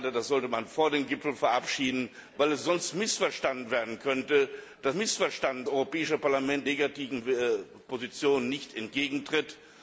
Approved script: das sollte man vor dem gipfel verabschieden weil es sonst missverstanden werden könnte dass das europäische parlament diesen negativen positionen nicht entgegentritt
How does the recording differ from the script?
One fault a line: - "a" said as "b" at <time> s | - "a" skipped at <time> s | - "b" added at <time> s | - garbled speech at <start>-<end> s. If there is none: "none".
- "das" said as "missverstanden" at 4.9 s
- "diesen" skipped at 6.7 s